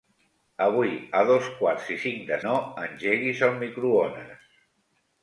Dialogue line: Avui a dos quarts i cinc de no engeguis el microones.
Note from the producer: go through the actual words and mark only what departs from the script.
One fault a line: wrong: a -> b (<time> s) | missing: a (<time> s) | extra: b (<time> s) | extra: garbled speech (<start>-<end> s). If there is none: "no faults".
no faults